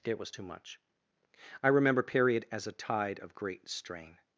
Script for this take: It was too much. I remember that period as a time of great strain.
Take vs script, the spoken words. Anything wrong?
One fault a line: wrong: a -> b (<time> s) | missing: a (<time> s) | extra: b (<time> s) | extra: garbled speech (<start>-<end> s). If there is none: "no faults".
missing: that (2.0 s)
wrong: time -> tide (2.7 s)